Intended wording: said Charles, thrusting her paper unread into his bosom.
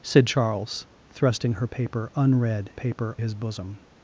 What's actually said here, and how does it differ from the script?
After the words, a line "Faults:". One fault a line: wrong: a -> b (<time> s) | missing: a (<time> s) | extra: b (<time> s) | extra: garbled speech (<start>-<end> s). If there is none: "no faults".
said Charles, thrusting her paper unread paper his bosom.
Faults:
wrong: into -> paper (2.7 s)